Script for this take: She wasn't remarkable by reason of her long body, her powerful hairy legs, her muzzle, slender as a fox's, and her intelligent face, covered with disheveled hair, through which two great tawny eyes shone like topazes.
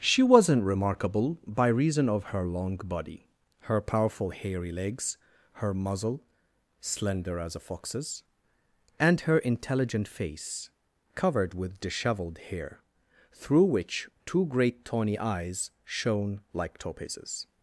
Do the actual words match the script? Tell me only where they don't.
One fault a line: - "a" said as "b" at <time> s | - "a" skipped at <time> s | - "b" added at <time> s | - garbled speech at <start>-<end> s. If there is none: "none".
none